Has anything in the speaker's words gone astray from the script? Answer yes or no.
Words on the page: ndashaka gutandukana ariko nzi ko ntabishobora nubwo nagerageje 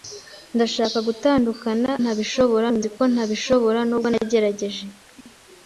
yes